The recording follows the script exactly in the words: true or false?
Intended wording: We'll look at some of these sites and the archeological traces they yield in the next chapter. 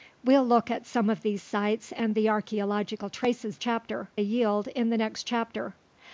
false